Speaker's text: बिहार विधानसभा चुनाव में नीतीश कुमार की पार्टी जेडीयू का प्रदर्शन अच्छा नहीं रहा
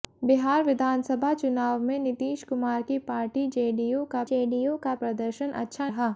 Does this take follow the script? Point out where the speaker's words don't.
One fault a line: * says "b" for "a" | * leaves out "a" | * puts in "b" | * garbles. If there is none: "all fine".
* puts in "जेडीयू का"
* leaves out "नहीं"